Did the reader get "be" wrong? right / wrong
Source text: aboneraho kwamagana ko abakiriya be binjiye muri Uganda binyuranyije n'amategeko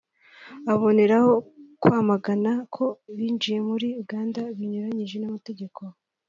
wrong